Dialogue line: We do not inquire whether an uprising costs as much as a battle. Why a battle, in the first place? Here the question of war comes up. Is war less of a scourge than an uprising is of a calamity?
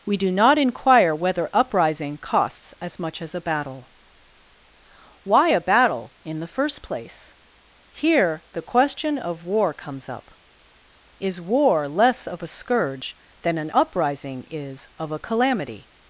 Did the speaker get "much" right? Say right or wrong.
right